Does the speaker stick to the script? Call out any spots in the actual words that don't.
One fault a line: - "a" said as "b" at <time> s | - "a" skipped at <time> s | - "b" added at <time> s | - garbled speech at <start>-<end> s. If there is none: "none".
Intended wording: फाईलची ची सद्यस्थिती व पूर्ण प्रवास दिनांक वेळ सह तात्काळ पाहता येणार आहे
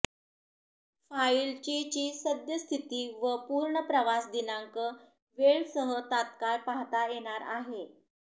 none